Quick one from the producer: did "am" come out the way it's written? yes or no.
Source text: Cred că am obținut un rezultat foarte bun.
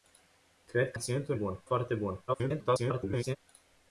no